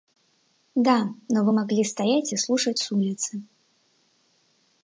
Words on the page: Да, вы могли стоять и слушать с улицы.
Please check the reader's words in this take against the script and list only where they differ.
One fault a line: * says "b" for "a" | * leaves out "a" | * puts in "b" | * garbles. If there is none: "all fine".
* puts in "но"